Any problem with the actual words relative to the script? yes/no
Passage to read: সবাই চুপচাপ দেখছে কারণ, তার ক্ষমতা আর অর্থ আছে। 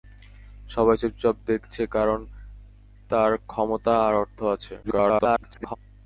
yes